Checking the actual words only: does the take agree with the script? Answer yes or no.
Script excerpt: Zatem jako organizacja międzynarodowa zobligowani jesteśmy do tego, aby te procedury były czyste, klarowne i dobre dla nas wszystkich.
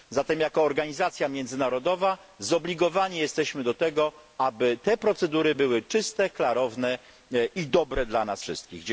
yes